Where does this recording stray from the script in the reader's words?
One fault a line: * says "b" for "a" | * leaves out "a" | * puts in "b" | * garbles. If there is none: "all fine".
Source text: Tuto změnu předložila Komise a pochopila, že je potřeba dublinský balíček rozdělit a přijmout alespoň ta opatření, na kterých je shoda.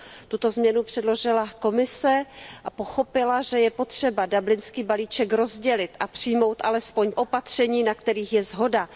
* leaves out "ta"